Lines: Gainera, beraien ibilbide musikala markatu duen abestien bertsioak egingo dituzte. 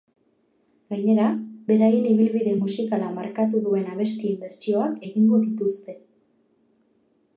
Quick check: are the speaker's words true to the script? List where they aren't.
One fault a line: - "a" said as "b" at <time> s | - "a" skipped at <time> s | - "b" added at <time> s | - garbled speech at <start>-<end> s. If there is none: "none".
none